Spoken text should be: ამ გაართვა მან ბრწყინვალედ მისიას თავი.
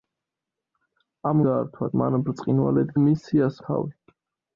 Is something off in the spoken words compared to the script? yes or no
no